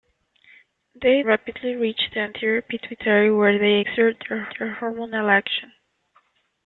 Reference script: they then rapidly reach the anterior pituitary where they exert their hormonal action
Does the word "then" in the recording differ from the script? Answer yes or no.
yes